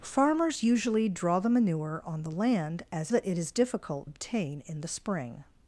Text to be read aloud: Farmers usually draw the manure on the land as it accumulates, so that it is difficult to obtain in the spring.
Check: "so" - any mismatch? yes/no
yes